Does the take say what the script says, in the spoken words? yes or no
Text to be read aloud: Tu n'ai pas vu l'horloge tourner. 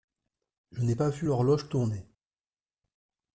no